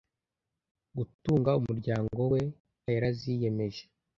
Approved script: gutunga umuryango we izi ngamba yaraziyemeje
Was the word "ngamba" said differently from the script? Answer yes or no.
yes